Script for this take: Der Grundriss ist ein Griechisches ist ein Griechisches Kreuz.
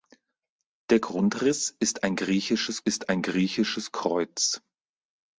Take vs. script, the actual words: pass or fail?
pass